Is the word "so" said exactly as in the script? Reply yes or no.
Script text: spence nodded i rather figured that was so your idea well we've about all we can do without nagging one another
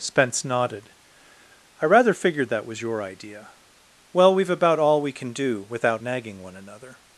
no